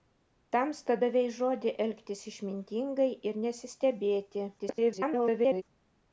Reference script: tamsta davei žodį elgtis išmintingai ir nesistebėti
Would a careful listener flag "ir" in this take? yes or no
no